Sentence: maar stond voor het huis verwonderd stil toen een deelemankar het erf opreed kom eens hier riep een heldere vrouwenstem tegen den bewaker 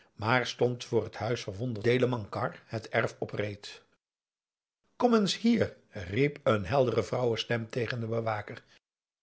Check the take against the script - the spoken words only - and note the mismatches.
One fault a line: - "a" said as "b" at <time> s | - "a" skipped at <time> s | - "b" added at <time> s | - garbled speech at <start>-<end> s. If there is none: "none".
- "stil toen een" skipped at 1.9 s